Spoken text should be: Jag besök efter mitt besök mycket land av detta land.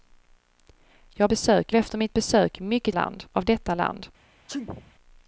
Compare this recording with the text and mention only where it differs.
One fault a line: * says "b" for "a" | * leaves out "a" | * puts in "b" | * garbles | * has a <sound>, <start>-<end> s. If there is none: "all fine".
* has a sneeze, 4.5-4.9 s